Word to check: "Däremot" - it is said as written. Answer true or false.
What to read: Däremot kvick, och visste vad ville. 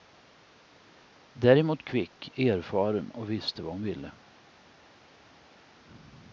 true